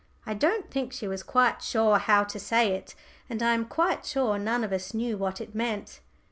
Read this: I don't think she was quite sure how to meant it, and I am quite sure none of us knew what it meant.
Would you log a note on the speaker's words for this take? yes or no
yes